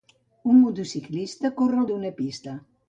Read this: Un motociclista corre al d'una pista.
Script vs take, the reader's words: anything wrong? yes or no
no